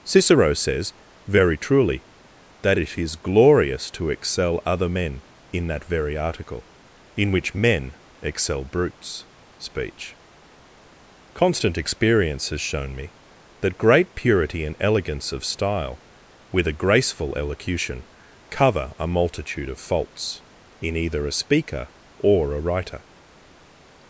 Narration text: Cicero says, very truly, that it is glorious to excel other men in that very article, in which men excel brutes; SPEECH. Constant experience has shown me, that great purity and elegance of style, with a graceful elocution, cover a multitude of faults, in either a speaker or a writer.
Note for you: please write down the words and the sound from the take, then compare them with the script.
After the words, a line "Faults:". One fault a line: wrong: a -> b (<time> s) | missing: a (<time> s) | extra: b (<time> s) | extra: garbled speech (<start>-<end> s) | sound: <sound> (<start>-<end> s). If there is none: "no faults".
Cicero says, very truly, that it is glorious to excel other men in that very article, in which men excel brutes; SPEECH. Constant experience has shown me, that great purity and elegance of style, with a graceful elocution, cover a multitude of faults, in either a speaker or a writer.
Faults:
no faults